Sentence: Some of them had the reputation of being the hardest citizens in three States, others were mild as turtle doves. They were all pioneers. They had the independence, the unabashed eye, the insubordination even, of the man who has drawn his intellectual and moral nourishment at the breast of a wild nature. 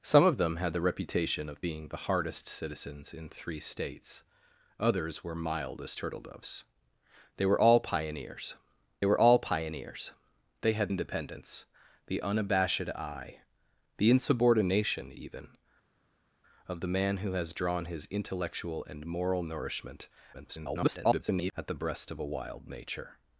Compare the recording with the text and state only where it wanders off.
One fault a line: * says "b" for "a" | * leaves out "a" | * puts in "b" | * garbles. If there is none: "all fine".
* puts in "were all pioneers"
* leaves out "the"
* garbles